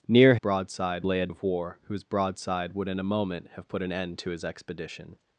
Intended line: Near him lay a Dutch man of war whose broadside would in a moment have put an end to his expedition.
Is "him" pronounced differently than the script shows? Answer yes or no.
yes